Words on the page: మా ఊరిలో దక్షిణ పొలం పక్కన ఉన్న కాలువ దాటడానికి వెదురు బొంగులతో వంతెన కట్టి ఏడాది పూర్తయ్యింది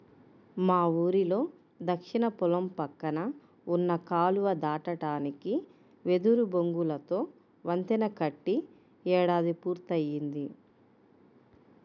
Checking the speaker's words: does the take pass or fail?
pass